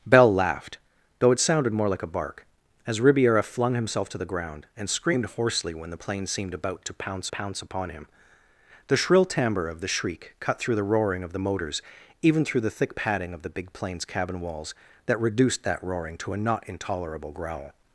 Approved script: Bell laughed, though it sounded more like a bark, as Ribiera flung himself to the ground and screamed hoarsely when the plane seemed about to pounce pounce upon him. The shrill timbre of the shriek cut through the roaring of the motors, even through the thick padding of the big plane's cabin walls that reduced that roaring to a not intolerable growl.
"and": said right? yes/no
yes